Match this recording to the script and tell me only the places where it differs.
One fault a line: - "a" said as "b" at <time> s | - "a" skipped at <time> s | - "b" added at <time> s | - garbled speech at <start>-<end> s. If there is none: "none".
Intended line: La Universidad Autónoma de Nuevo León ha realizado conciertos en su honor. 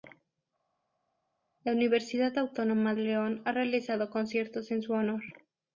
- "de Nuevo" skipped at 2.9 s